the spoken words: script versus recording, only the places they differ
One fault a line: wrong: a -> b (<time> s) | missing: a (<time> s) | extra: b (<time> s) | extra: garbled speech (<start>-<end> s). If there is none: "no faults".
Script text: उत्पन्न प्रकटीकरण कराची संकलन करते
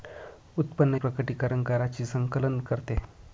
no faults